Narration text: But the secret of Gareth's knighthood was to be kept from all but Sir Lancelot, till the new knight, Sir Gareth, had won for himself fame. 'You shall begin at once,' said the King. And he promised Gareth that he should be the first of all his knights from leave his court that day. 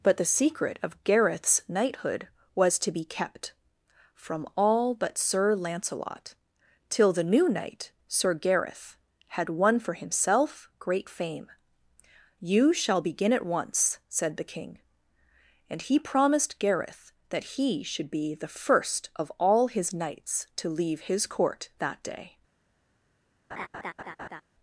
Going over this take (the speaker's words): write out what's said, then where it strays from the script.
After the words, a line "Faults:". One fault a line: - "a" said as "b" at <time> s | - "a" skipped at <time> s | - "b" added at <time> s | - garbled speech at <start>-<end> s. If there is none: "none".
But the secret of Gareth's knighthood was to be kept from all but Sir Lancelot, till the new knight, Sir Gareth, had won for himself great fame. 'You shall begin at once,' said the King. And he promised Gareth that he should be the first of all his knights to leave his court that day.
Faults:
- "great" added at 10.8 s
- "from" said as "to" at 20.6 s